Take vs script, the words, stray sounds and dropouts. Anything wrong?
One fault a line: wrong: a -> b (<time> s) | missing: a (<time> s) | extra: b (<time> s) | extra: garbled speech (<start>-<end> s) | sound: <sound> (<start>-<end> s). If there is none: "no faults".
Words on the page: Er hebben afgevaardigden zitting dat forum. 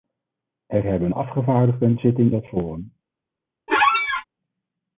sound: squeak (3.7-4.2 s)